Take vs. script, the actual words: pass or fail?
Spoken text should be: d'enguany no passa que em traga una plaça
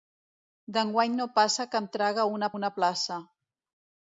fail